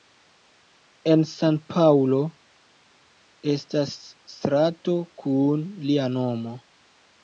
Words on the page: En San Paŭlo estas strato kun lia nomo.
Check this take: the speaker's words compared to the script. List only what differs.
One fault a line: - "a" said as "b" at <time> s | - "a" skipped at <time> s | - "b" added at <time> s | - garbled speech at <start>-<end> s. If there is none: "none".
none